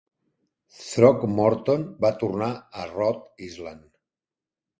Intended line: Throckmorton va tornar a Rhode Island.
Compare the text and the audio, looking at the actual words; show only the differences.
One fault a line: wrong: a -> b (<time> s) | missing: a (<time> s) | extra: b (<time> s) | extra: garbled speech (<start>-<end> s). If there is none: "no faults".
no faults